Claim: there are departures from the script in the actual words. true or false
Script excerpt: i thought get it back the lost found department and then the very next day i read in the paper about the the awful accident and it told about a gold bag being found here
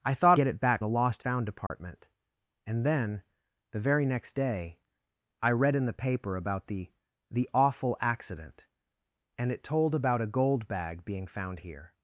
false